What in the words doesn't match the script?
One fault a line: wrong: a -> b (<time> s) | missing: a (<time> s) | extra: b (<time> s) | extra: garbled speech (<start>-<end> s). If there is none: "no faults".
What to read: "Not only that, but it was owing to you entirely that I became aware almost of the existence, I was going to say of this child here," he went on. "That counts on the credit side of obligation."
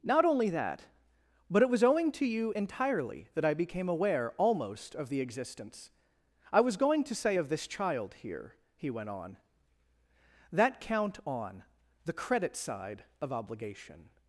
wrong: counts -> count (10.8 s)